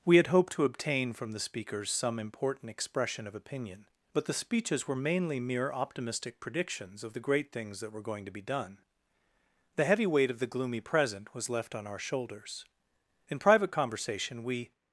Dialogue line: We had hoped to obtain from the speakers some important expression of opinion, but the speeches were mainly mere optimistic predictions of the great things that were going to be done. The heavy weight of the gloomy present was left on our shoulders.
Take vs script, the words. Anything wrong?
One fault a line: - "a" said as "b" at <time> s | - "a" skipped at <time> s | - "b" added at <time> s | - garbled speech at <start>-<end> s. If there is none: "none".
- "In private conversation we" added at 13.3 s